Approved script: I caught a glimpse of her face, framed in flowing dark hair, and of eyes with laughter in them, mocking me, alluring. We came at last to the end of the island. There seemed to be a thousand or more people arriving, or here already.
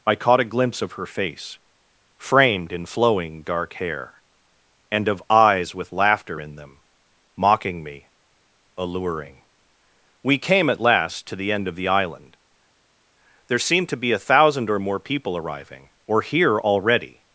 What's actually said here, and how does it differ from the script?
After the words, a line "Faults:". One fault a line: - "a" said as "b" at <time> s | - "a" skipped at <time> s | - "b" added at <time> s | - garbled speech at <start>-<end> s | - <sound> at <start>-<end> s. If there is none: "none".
I caught a glimpse of her face, framed in flowing dark hair, and of eyes with laughter in them, mocking me, alluring. We came at last to the end of the island. There seemed to be a thousand or more people arriving, or here already.
Faults:
none